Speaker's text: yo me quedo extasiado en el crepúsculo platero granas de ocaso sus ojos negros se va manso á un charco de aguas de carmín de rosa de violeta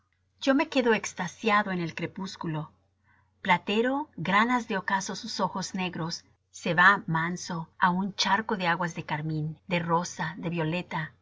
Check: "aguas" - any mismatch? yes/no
no